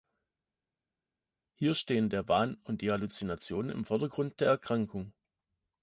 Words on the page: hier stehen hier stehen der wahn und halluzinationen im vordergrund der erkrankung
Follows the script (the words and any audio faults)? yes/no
no